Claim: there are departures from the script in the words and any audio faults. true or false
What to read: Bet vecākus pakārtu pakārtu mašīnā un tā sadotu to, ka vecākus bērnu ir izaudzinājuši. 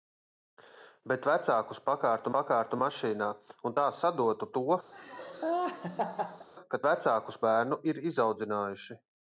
true